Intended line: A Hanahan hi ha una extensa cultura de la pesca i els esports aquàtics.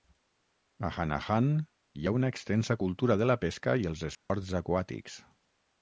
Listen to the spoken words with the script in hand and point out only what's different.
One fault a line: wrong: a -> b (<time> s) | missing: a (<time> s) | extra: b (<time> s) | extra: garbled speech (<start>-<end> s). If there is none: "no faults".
no faults